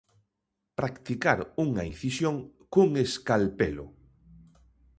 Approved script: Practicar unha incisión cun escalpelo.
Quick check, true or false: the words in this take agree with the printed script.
true